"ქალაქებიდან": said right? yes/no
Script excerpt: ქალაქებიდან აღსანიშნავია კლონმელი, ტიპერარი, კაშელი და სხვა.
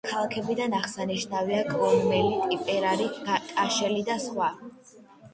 yes